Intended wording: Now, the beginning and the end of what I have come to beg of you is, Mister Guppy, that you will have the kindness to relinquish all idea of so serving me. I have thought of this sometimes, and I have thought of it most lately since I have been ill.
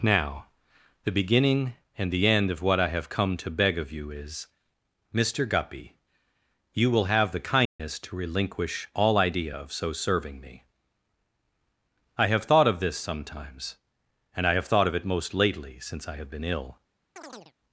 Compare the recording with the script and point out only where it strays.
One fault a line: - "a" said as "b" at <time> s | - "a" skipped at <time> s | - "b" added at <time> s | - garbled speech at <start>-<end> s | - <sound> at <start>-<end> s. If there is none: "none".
- "that" skipped at 6.0 s
- dropout at 7.7-7.8 s
- chirp at 17.2-17.5 s